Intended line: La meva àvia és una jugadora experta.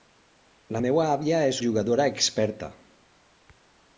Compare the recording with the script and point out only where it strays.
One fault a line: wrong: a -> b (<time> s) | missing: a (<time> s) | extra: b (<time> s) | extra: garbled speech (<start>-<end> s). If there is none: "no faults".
missing: una (1.6 s)